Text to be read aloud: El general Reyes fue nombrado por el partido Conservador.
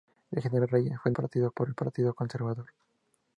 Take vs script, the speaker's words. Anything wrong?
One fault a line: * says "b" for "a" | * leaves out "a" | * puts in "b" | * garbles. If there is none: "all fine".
* says "partido" for "nombrado"